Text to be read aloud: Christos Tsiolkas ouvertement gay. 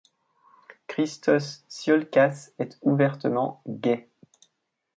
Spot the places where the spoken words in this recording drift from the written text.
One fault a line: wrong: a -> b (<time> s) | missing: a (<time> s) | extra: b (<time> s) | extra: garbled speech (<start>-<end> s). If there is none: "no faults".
extra: est (2.6 s)